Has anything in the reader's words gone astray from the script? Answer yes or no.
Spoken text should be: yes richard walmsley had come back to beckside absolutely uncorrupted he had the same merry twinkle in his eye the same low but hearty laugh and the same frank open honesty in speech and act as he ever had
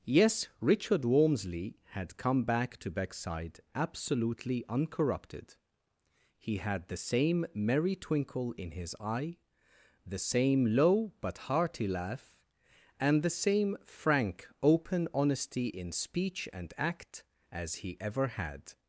no